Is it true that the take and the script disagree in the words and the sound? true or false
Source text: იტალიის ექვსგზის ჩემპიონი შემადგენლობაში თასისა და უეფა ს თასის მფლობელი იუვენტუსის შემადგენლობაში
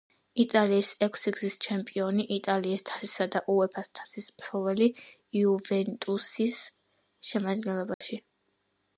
true